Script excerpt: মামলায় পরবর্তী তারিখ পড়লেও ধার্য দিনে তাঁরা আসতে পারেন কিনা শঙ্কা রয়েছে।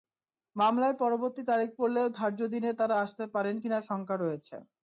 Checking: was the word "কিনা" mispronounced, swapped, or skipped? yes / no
no